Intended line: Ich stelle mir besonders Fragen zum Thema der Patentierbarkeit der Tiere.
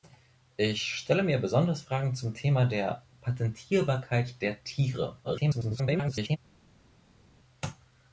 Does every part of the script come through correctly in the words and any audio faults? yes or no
no